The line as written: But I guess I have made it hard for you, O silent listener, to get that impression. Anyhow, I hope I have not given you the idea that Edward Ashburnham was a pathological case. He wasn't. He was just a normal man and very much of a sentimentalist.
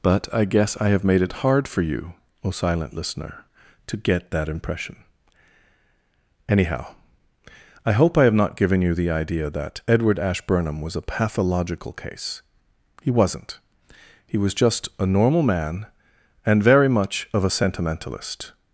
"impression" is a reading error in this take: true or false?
false